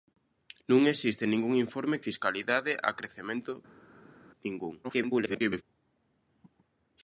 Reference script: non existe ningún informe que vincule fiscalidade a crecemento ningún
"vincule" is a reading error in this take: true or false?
true